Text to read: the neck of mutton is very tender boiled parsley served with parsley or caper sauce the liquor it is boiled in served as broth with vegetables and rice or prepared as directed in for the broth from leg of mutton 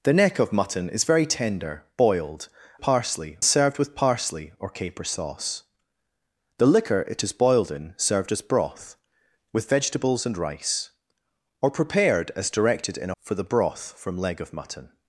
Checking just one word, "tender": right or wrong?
right